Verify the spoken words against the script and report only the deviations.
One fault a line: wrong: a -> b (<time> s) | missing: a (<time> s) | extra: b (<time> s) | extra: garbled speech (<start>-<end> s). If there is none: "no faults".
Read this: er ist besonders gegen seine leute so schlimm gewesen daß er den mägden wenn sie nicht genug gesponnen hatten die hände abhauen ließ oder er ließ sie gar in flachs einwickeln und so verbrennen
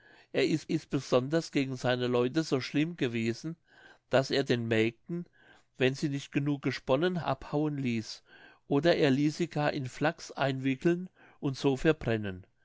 extra: ist (0.7 s)
missing: hatten die hände (7.2 s)